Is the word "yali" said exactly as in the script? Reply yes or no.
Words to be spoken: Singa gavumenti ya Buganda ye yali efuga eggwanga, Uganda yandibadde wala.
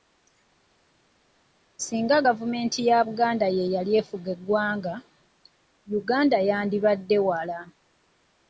yes